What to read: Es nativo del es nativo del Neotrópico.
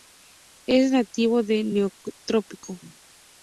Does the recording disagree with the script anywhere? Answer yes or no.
yes